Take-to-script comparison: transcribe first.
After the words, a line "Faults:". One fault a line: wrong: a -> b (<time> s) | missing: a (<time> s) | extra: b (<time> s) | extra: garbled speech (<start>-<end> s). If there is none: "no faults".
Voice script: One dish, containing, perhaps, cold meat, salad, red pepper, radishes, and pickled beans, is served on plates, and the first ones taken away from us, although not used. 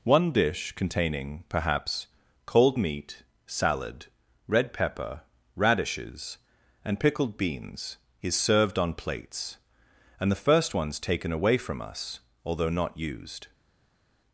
One dish, containing, perhaps, cold meat, salad, red pepper, radishes, and pickled beans, is served on plates, and the first ones taken away from us, although not used.
Faults:
no faults